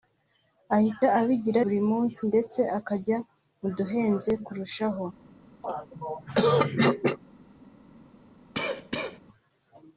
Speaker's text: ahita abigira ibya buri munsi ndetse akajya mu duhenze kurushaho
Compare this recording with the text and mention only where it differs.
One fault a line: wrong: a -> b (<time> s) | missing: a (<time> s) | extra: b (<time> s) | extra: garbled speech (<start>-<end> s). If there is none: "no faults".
missing: ibya (1.6 s)